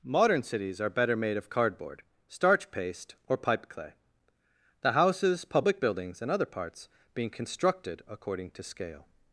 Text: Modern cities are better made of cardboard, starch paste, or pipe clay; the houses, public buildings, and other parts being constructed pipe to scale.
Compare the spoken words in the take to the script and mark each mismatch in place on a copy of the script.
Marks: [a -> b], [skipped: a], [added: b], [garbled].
Modern cities are better made of cardboard, starch paste, or pipe clay; the houses, public buildings, and other parts being constructed [pipe -> according] to scale.